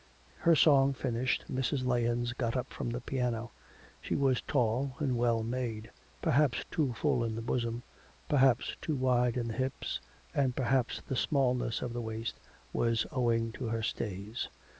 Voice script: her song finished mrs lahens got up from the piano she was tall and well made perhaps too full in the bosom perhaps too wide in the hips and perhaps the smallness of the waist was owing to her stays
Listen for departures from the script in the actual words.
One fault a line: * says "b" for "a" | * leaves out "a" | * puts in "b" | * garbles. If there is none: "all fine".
all fine